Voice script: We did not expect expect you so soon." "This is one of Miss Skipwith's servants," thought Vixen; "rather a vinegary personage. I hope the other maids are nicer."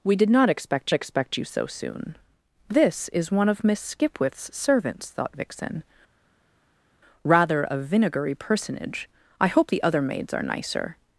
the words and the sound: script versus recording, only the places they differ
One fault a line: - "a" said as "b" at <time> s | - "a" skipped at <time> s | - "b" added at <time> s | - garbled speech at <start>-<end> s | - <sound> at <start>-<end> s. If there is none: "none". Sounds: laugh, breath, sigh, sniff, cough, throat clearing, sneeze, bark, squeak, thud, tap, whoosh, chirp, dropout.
none